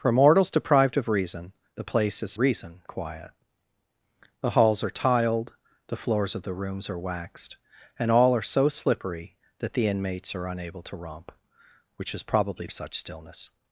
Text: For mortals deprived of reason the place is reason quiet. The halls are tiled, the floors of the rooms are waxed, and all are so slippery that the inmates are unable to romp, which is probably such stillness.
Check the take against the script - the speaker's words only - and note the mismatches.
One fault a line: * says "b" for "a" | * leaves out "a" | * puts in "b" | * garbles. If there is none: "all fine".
all fine